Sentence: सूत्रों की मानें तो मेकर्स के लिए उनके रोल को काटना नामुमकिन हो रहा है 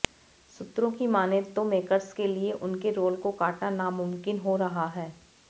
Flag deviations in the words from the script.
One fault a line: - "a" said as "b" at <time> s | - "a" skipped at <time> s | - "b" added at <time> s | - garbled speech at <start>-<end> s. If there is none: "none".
none